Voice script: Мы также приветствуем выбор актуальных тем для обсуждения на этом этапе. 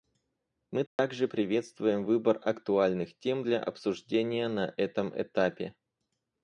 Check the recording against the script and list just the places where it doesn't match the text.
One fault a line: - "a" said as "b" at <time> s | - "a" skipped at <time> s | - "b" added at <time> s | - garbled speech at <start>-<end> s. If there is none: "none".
none